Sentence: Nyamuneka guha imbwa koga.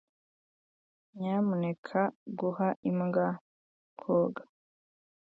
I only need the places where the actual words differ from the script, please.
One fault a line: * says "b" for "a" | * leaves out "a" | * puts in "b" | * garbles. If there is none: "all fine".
all fine